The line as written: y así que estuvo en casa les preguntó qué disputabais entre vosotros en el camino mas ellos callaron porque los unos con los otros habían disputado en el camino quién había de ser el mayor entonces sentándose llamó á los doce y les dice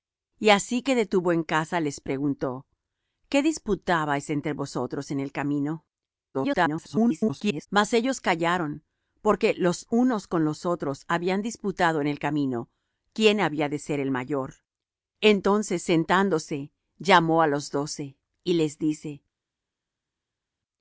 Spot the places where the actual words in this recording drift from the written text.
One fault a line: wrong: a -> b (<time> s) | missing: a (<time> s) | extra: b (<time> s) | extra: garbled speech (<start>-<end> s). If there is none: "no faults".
extra: garbled speech (6.3-7.7 s)